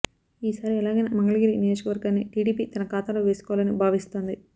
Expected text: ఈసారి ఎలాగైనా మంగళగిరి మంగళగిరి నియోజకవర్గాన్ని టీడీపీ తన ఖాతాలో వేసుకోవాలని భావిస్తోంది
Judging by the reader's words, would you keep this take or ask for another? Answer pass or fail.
fail